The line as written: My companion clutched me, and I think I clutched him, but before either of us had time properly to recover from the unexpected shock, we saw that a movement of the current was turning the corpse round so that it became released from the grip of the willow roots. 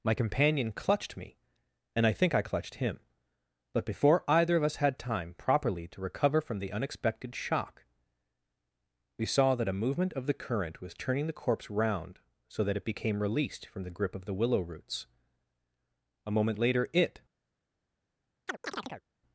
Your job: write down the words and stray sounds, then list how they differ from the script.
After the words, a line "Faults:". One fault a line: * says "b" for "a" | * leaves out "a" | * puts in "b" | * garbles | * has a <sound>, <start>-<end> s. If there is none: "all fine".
My companion clutched me, and I think I clutched him, but before either of us had time properly to recover from the unexpected shock, we saw that a movement of the current was turning the corpse round so that it became released from the grip of the willow roots. A moment later it
Faults:
* puts in "A moment later it"
* has a chirp, 18.5-19.0 s